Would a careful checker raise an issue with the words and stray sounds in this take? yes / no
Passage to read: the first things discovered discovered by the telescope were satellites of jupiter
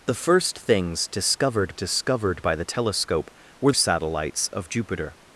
no